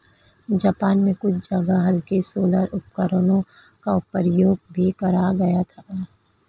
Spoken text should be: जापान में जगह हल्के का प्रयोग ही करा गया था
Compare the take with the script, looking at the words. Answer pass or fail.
fail